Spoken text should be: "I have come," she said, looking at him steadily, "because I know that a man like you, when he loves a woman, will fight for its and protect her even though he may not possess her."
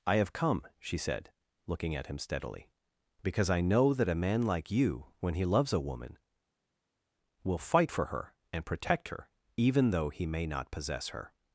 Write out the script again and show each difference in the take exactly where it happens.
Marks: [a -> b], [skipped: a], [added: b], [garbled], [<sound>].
"I have come," she said, looking at him steadily, "because I know that a man like you, when he loves a woman, will fight for [its -> her] and protect her even though he may not possess her."